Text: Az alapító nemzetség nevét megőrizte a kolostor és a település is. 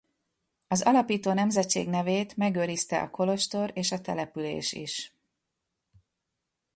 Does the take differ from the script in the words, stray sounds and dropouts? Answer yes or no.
no